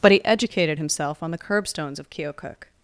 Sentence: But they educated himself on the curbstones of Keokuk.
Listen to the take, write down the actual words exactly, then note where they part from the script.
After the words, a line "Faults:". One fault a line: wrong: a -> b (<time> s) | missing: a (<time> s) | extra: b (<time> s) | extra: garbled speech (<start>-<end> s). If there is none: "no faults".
But he educated himself on the curbstones of Keokuk.
Faults:
wrong: they -> he (0.1 s)